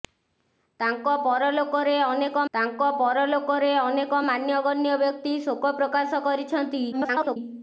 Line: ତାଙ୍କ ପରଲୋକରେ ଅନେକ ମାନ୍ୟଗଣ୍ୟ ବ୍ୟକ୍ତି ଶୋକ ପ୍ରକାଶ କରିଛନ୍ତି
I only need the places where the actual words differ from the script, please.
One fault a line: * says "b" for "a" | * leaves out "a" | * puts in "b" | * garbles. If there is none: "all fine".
* puts in "ତାଙ୍କ ପରଲୋକରେ ଅନେକ"
* garbles